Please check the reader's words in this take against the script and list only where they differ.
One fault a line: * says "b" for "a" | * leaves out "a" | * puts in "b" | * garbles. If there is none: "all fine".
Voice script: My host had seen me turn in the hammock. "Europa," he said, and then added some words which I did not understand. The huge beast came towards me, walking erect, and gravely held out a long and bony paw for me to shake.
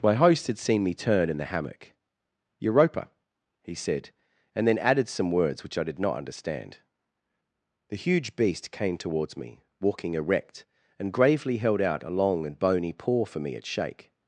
* says "at" for "to"